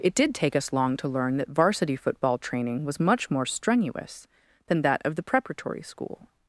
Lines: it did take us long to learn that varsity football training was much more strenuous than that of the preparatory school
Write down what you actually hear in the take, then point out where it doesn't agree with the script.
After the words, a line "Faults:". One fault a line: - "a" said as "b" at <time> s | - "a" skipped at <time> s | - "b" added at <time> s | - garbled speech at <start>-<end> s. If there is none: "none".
it did take us long to learn that varsity football training was much more strenuous than that of the preparatory school
Faults:
none